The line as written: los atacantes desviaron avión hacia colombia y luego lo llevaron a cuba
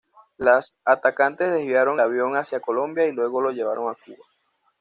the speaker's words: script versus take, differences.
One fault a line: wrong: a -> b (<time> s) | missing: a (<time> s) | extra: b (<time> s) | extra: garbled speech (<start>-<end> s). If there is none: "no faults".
no faults